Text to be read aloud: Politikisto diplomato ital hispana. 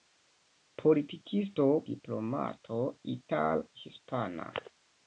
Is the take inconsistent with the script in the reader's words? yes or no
no